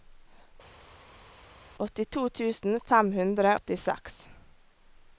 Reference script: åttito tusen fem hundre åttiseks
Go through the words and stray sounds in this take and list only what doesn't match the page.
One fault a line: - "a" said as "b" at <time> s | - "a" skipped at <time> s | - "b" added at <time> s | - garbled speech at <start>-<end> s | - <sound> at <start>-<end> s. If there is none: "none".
none